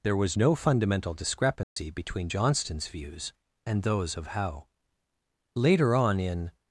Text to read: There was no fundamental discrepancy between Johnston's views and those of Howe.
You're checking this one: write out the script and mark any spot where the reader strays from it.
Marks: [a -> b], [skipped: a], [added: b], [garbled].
There was no fundamental discrepancy between Johnston's views and those of Howe. [added: Later on in]